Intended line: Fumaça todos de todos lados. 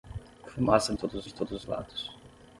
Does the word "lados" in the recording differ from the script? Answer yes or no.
no